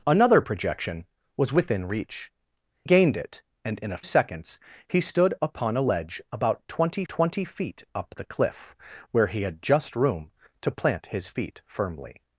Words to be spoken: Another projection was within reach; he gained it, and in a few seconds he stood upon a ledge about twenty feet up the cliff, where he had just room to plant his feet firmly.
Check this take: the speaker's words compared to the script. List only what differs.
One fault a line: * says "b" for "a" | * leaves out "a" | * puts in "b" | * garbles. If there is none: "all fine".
* leaves out "he"
* leaves out "few"
* puts in "twenty"